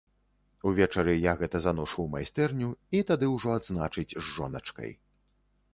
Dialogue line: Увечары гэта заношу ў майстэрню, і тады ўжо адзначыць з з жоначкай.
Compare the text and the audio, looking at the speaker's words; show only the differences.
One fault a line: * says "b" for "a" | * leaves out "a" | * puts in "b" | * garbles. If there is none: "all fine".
* puts in "я"
* leaves out "з"